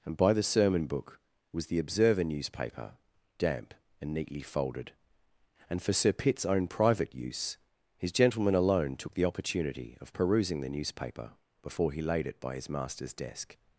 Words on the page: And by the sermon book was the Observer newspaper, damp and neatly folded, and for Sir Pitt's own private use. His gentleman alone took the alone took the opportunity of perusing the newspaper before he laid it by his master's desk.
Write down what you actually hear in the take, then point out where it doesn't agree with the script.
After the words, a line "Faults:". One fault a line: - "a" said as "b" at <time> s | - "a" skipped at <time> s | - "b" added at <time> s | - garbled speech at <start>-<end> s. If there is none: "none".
And by the sermon book was the Observer newspaper, damp and neatly folded, and for Sir Pitt's own private use. His gentleman alone took the opportunity of perusing the newspaper before he laid it by his master's desk.
Faults:
- "alone took the" skipped at 9.2 s